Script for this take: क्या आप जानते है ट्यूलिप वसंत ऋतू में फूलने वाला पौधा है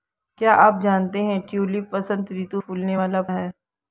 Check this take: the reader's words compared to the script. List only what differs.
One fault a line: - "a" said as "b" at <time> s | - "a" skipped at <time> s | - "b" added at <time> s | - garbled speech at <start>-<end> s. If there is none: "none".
- "में" skipped at 2.6 s
- "पौधा" skipped at 3.2 s